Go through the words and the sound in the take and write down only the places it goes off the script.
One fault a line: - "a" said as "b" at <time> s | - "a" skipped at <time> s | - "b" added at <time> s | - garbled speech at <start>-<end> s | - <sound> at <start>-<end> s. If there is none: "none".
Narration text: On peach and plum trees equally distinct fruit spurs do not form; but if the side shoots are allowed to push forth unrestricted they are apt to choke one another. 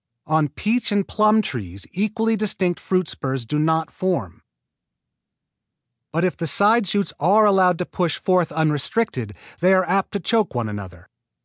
none